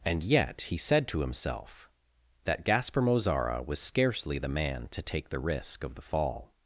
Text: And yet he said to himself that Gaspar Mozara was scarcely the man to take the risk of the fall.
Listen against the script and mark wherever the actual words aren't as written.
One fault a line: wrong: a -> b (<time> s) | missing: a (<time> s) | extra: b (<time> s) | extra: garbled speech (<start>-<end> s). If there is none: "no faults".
no faults